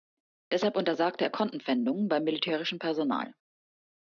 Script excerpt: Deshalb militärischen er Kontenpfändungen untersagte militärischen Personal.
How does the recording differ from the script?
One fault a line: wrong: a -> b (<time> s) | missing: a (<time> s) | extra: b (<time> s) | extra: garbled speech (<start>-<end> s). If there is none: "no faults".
wrong: militärischen -> untersagte (0.8 s)
wrong: untersagte -> beim (2.1 s)